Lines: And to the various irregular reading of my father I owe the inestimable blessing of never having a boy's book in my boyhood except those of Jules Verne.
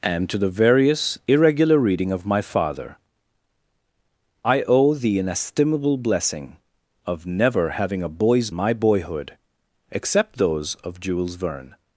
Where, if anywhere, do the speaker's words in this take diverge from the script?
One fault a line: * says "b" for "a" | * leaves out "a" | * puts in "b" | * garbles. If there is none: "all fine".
* leaves out "book in"